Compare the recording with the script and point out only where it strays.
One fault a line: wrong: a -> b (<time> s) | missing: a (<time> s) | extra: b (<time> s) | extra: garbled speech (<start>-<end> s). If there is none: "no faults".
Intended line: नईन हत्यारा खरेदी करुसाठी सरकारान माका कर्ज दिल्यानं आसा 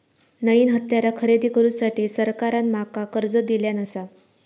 no faults